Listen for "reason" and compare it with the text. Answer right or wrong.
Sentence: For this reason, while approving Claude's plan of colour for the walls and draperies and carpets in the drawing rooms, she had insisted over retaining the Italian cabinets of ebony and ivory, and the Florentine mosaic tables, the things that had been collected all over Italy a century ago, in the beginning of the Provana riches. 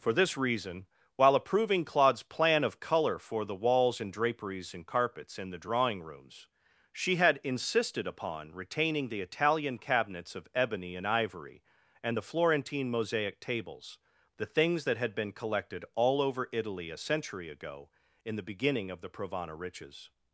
right